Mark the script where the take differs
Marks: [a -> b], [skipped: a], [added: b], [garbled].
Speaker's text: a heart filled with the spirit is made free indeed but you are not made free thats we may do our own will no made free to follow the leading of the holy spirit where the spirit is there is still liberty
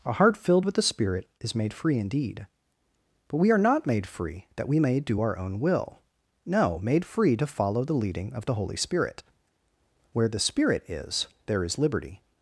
a heart filled with the spirit is made free indeed but [you -> we] are not made free [thats -> that] we may do our own will no made free to follow the leading of the holy spirit where the spirit is there is [skipped: still] liberty